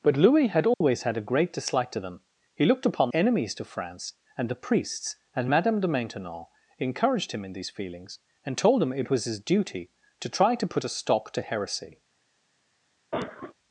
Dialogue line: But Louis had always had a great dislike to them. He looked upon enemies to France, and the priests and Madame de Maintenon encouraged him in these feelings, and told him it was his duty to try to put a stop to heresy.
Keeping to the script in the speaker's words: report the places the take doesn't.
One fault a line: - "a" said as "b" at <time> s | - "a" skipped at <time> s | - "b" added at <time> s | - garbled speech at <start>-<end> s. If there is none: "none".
none